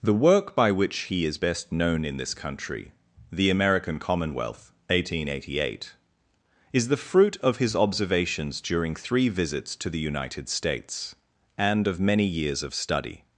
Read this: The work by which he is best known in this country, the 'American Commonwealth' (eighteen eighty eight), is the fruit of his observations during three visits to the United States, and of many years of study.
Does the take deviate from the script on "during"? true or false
false